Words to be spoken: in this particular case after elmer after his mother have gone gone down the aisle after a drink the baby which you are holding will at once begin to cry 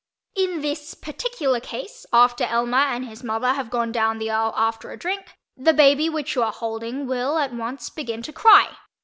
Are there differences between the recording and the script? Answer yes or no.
yes